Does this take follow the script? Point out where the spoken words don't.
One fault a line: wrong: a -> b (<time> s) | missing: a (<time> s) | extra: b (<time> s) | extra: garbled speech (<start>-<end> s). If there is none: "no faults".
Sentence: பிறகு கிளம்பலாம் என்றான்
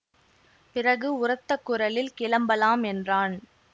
extra: உரத்த குரலில் (1.2 s)